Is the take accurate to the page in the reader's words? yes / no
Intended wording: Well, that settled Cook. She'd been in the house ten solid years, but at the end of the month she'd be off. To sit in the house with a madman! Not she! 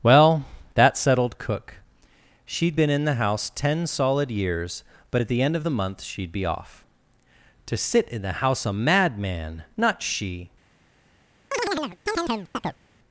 no